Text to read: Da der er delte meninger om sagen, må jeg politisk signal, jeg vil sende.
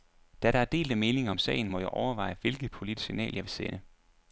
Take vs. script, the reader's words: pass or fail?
fail